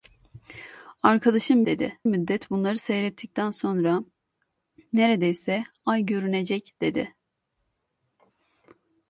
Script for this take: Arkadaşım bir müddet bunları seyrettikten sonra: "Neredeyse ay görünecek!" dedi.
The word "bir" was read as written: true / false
false